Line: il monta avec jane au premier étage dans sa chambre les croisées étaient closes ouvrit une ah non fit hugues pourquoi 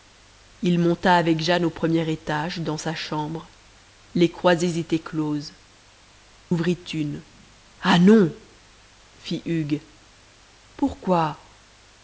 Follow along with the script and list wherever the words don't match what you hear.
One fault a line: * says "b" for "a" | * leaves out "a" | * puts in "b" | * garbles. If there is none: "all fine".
all fine